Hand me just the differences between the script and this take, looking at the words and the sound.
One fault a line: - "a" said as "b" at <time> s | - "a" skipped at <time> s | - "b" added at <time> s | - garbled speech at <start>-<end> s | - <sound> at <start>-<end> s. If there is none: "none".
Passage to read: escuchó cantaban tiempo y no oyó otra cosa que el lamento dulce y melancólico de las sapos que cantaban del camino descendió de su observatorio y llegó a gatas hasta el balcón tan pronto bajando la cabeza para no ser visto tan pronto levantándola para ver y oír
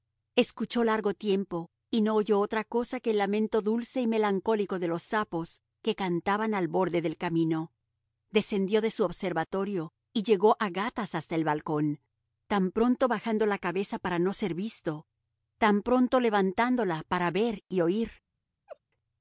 - "cantaban" said as "largo" at 0.8 s
- "las" said as "los" at 4.9 s
- "al borde" added at 6.5 s
- laugh at 18.7-18.8 s